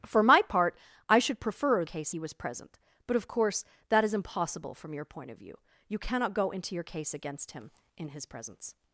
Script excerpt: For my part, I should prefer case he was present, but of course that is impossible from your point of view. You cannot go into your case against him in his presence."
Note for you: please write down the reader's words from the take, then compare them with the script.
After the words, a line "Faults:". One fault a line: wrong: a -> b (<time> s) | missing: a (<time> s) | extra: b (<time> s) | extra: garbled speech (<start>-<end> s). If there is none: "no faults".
For my part, I should prefer case he was present, but of course that is impossible from your point of view. You cannot go into your case against him in his presence."
Faults:
no faults